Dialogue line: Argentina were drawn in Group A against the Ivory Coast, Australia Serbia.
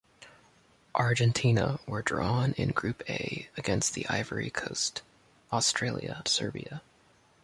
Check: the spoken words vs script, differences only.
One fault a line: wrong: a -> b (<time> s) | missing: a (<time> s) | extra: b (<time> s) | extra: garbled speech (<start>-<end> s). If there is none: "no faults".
no faults